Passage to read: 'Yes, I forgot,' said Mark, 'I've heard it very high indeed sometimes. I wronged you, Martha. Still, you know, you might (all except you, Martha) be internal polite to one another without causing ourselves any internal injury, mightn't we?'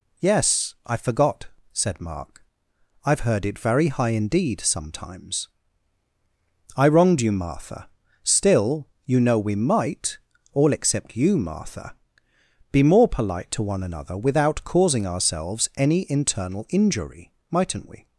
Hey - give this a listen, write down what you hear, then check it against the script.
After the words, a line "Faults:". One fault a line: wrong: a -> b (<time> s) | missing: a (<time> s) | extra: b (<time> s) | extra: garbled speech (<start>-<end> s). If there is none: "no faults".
'Yes, I forgot,' said Mark, 'I've heard it very high indeed sometimes. I wronged you, Martha. Still, you know, we might (all except you, Martha) be more polite to one another without causing ourselves any internal injury, mightn't we?'
Faults:
wrong: you -> we (9.4 s)
wrong: internal -> more (12.8 s)